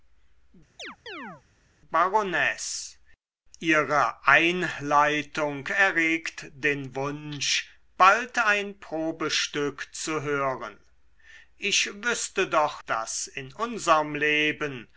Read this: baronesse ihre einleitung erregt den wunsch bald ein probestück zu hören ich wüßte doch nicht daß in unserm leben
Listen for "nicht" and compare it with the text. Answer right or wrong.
wrong